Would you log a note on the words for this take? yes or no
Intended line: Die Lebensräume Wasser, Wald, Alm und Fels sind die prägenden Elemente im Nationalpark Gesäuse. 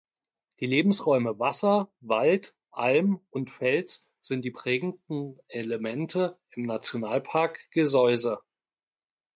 no